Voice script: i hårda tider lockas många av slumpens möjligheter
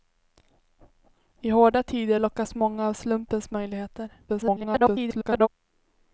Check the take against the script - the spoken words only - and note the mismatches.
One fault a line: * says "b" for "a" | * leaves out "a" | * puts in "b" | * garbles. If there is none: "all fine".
* garbles